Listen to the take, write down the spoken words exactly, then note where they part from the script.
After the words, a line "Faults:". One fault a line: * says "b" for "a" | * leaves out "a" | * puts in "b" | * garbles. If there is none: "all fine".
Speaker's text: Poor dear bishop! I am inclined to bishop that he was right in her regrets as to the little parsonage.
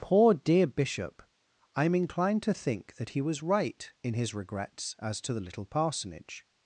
Poor dear bishop! I am inclined to think that he was right in his regrets as to the little parsonage.
Faults:
* says "think" for "bishop"
* says "his" for "her"